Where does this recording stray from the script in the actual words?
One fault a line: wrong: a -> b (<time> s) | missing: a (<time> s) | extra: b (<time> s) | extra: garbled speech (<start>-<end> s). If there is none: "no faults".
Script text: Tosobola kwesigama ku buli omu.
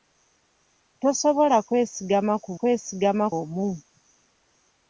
wrong: buli -> kwesigama (2.6 s)